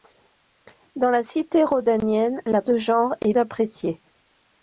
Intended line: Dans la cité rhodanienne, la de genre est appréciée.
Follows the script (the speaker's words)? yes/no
yes